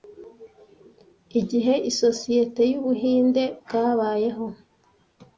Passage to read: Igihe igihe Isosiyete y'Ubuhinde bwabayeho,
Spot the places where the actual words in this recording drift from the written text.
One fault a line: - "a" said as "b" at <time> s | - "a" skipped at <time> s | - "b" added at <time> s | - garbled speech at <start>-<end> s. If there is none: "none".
- "igihe" skipped at 1.7 s